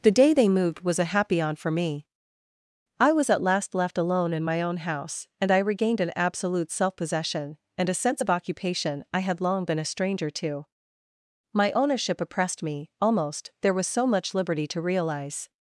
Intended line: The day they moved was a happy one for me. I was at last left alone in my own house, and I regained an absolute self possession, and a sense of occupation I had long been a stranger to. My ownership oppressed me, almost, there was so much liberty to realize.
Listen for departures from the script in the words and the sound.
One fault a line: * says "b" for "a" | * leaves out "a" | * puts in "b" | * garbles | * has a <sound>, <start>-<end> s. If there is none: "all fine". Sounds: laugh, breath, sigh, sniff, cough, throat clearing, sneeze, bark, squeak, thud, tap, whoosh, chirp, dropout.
* says "on" for "one"